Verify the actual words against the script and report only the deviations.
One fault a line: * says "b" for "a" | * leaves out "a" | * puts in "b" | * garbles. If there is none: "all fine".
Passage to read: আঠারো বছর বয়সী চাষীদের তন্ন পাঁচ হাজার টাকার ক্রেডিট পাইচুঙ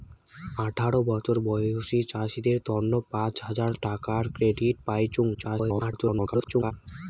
* garbles